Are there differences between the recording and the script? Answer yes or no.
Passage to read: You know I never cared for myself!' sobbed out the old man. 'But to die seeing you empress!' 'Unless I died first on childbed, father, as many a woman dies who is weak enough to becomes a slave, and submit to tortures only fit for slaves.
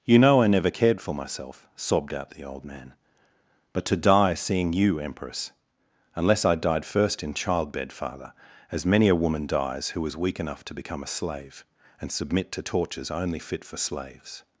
yes